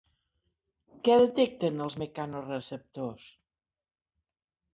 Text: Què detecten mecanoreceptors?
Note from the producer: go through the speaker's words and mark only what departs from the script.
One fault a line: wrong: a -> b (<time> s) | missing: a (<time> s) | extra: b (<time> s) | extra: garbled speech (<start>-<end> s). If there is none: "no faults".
extra: els (1.8 s)